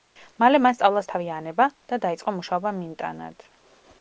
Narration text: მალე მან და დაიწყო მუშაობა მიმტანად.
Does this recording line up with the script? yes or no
no